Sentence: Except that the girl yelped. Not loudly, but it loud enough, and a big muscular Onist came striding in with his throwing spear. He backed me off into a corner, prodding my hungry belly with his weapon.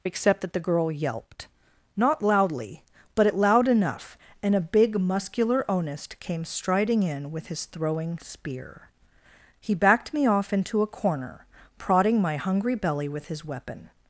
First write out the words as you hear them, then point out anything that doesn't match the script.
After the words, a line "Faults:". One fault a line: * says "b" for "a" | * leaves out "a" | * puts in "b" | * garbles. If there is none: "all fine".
Except that the girl yelped. Not loudly, but it loud enough, and a big muscular Onist came striding in with his throwing spear. He backed me off into a corner, prodding my hungry belly with his weapon.
Faults:
all fine